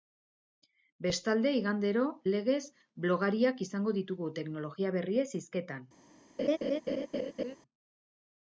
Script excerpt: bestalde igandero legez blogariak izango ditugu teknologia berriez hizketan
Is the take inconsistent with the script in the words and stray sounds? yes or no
yes